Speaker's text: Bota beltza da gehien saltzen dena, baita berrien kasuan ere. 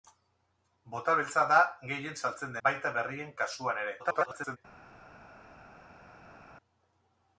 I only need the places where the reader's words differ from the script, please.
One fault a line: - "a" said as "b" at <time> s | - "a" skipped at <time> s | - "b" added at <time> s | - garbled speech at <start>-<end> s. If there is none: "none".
- "dena" skipped at 2.6 s
- garbled speech at 4.0-4.6 s